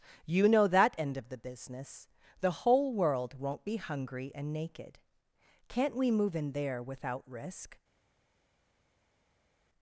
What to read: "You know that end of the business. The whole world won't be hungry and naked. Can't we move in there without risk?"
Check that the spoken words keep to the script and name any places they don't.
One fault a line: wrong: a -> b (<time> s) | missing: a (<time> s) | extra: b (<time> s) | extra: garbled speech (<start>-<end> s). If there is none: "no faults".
no faults